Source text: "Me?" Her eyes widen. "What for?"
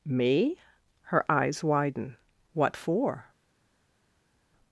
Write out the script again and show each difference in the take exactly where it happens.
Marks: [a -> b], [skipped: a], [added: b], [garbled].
"Me?" Her eyes widen. "What for?"